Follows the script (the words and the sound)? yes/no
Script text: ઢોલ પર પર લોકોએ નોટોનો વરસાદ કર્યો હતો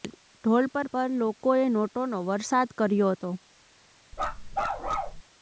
no